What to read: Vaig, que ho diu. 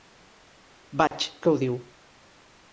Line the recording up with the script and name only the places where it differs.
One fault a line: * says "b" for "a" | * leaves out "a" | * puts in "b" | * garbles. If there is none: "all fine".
all fine